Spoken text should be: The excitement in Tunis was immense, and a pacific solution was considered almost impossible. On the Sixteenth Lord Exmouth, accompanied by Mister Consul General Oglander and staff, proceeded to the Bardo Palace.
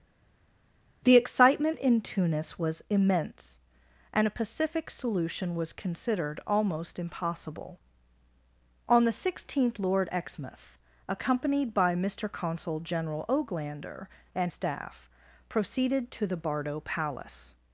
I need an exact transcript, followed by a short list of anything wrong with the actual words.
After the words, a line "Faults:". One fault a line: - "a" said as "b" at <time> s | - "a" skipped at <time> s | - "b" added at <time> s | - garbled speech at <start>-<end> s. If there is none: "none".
The excitement in Tunis was immense, and a pacific solution was considered almost impossible. On the Sixteenth Lord Exmouth, accompanied by Mister Consul General Oglander and staff, proceeded to the Bardo Palace.
Faults:
none